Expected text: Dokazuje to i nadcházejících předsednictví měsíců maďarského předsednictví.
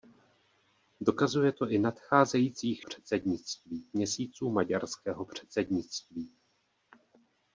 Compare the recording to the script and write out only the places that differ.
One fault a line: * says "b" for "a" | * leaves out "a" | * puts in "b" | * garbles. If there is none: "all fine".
all fine